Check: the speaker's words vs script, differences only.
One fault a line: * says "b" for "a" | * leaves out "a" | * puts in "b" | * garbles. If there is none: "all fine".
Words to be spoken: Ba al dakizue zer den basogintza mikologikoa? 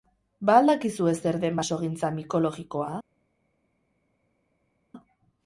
all fine